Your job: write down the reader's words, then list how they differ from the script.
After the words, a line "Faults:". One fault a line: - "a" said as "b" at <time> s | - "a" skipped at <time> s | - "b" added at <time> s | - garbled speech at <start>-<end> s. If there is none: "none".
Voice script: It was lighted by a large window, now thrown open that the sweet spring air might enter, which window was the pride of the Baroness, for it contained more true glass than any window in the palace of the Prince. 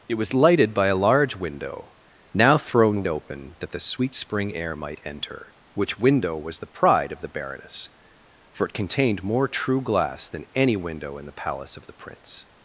It was lighted by a large window, now thrown open that the sweet spring air might enter, which window was the pride of the Baroness, for it contained more true glass than any window in the palace of the Prince.
Faults:
none